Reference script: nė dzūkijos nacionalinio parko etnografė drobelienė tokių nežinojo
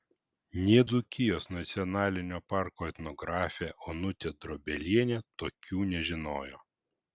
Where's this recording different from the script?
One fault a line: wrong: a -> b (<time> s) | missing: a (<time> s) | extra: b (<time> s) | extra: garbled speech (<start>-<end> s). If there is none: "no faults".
extra: onutė (3.9 s)